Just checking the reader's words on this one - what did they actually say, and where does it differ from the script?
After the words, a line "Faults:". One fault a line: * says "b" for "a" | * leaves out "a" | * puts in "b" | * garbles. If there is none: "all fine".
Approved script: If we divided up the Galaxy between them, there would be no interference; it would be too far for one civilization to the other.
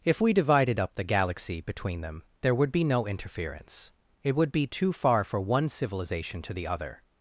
If we divided up the Galaxy between them, there would be no interference; it would be too far for one civilization to the other.
Faults:
all fine